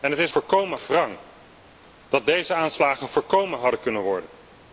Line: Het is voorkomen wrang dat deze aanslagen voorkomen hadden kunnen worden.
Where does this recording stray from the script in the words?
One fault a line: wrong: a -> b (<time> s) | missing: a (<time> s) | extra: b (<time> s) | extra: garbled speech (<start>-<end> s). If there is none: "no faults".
no faults